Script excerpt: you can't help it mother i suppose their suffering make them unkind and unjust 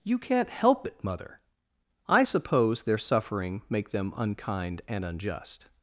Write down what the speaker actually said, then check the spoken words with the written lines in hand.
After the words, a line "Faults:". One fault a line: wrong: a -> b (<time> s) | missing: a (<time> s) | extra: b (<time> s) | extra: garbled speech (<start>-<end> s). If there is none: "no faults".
you can't help it mother i suppose their suffering make them unkind and unjust
Faults:
no faults